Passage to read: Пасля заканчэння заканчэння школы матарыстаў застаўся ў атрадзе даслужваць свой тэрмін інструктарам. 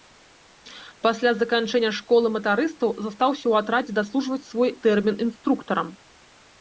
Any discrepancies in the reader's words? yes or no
yes